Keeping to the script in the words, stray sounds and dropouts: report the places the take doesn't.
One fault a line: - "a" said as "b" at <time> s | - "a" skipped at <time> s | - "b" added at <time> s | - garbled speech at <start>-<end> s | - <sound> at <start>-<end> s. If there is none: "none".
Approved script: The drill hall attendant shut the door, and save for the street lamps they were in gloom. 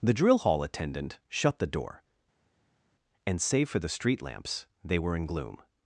none